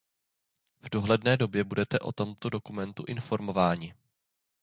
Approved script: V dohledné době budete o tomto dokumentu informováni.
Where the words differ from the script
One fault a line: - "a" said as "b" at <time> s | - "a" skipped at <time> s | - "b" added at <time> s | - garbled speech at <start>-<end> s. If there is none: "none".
none